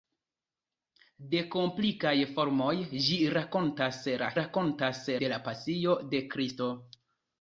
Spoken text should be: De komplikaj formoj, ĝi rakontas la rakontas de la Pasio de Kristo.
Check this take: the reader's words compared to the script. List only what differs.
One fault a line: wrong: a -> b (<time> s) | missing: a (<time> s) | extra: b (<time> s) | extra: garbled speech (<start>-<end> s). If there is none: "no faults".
no faults